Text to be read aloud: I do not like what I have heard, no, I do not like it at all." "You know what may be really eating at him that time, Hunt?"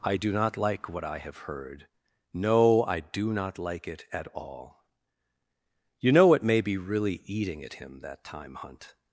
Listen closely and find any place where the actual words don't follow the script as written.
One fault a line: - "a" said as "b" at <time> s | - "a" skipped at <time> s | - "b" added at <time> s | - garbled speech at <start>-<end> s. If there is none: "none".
none